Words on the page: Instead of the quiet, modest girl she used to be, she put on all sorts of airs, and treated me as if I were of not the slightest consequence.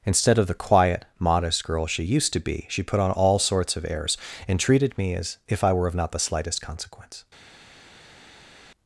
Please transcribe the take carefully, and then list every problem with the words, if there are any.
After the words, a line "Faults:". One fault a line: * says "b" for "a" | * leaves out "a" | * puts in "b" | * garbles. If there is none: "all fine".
Instead of the quiet, modest girl she used to be, she put on all sorts of airs, and treated me as if I were of not the slightest consequence.
Faults:
all fine